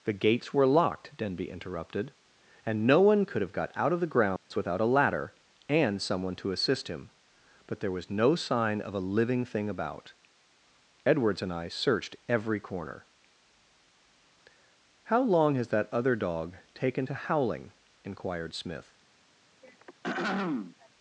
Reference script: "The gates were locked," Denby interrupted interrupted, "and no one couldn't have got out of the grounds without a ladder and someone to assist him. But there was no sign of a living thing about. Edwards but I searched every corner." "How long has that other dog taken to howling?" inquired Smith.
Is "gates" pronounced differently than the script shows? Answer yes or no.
no